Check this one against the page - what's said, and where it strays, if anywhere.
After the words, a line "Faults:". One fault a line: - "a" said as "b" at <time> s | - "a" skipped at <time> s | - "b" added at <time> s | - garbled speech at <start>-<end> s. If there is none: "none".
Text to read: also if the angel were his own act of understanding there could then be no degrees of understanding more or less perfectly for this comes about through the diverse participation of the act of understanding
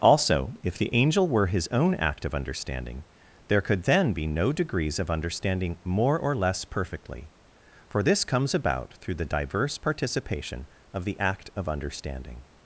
also if the angel were his own act of understanding there could then be no degrees of understanding more or less perfectly for this comes about through the diverse participation of the act of understanding
Faults:
none